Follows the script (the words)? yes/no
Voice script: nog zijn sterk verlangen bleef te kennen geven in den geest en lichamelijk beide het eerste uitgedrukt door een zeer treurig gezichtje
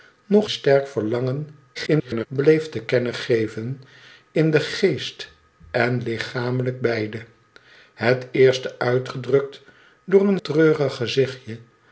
no